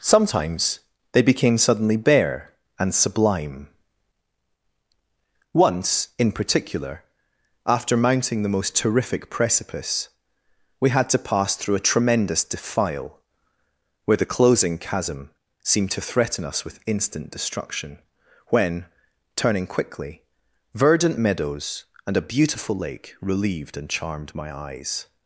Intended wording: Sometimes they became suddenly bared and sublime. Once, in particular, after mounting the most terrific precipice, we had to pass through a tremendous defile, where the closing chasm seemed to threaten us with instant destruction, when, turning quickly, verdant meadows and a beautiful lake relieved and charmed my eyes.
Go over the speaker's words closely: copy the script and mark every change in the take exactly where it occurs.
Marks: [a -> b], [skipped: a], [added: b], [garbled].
Sometimes they became suddenly [bared -> bare] and sublime. Once, in particular, after mounting the most terrific precipice, we had to pass through a tremendous defile, where the closing chasm seemed to threaten us with instant destruction, when, turning quickly, verdant meadows and a beautiful lake relieved and charmed my eyes.